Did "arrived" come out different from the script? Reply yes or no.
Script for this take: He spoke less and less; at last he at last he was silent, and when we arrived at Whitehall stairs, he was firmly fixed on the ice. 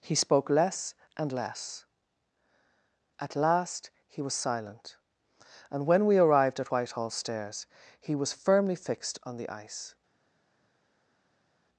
no